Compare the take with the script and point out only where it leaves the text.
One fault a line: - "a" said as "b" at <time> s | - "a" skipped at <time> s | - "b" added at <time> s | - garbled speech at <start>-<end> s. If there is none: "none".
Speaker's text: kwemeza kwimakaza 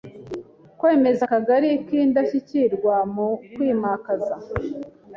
- "akagari k'indashyikirwa mu" added at 1.2 s